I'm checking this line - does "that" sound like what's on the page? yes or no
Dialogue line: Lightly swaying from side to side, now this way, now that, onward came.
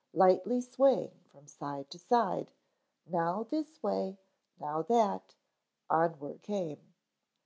yes